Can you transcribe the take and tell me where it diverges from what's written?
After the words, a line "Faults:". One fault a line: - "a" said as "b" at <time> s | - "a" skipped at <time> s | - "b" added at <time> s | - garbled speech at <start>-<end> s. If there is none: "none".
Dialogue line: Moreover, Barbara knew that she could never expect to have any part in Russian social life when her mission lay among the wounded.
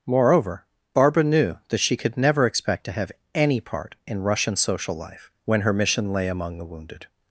Moreover, Barbara knew that she could never expect to have any part in Russian social life when her mission lay among the wounded.
Faults:
none